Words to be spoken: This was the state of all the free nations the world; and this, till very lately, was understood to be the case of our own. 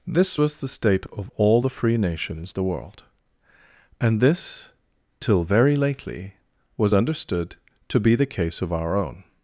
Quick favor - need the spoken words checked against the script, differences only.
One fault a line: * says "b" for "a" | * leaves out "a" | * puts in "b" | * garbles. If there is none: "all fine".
all fine